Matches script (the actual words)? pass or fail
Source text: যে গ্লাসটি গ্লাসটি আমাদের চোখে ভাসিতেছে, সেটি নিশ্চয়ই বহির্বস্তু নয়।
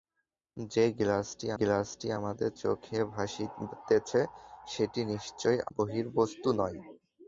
pass